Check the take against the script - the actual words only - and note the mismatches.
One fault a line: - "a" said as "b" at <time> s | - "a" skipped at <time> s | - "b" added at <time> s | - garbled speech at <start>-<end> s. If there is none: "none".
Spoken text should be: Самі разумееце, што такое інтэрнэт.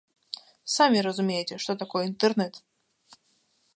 none